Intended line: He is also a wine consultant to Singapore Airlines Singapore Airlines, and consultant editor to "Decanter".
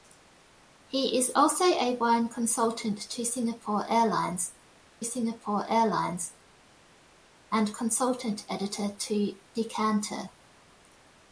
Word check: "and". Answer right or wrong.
right